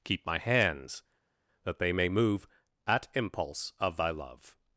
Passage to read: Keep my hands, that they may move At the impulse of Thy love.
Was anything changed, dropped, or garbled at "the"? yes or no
yes